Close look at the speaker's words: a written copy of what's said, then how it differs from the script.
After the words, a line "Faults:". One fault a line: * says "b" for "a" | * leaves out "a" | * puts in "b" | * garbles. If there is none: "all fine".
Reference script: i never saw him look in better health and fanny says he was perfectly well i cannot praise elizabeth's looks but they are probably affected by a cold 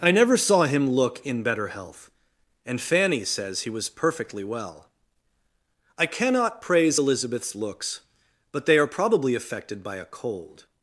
i never saw him look in better health and fanny says he was perfectly well i cannot praise elizabeth's looks but they are probably affected by a cold
Faults:
all fine